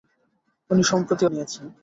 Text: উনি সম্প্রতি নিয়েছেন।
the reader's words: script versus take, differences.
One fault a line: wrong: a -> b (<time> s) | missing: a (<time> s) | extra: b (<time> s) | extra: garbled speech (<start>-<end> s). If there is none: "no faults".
no faults